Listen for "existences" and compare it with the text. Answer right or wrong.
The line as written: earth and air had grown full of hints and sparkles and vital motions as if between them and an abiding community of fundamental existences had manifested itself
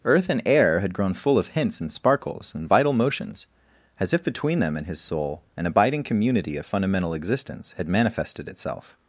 wrong